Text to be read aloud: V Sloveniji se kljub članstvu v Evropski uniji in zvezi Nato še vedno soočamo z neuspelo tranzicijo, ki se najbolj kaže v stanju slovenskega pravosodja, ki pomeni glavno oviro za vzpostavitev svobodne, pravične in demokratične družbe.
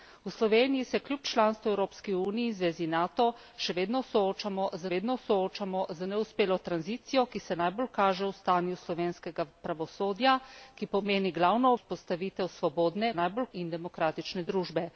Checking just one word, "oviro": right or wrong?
wrong